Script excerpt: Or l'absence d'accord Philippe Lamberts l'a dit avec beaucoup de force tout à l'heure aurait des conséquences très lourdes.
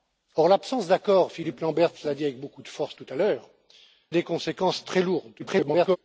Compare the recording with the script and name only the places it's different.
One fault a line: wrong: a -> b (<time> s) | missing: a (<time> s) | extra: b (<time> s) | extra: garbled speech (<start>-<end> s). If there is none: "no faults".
missing: aurait (3.5 s)
extra: garbled speech (5.4-6.0 s)